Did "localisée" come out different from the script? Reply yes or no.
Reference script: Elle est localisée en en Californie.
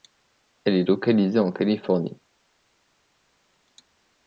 no